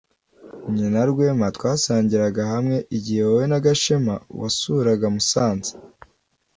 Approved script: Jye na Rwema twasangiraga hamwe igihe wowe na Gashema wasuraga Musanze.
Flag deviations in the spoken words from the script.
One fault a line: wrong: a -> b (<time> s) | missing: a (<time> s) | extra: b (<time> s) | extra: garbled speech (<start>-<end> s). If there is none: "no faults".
no faults